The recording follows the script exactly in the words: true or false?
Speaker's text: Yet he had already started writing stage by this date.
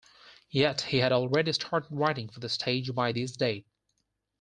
false